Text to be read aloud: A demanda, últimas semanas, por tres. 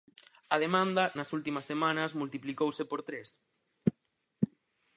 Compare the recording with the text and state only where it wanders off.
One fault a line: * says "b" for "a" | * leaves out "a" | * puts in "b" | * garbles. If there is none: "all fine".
* puts in "nas"
* puts in "multiplicouse"